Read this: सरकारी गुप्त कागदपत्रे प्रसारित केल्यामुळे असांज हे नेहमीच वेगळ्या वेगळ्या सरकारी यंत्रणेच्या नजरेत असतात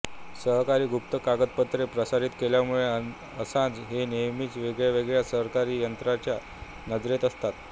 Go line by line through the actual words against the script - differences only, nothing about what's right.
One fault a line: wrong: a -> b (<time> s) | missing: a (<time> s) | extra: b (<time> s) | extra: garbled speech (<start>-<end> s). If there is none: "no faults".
no faults